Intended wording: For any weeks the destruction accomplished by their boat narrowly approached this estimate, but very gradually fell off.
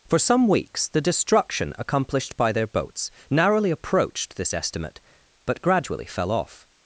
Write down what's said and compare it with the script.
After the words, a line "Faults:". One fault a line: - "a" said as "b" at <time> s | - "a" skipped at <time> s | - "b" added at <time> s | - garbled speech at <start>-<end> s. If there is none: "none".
For some weeks the destruction accomplished by their boats narrowly approached this estimate, but gradually fell off.
Faults:
- "any" said as "some" at 0.2 s
- "boat" said as "boats" at 2.7 s
- "very" skipped at 5.6 s